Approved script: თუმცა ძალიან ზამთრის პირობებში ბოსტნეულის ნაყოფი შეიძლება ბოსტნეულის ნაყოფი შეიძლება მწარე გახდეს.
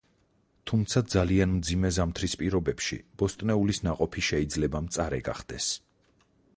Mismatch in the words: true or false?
true